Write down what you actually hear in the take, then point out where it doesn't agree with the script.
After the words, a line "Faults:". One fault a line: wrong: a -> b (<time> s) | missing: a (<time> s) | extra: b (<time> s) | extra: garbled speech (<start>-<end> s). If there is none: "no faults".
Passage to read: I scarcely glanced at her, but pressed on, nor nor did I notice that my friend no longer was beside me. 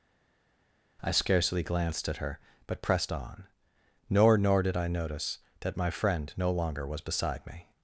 I scarcely glanced at her, but pressed on, nor nor did I notice that my friend no longer was beside me.
Faults:
no faults